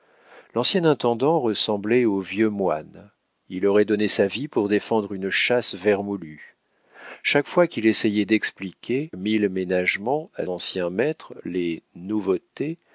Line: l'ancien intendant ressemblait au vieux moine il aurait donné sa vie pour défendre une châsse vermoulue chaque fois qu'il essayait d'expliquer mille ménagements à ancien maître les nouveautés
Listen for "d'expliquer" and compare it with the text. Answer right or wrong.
right